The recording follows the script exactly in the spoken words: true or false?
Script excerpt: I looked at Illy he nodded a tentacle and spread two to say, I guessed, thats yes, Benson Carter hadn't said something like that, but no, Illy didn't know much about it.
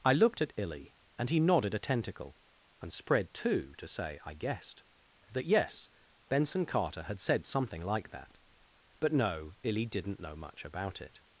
false